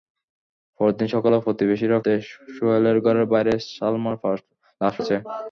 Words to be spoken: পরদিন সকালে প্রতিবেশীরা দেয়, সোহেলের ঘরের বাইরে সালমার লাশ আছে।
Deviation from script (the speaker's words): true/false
false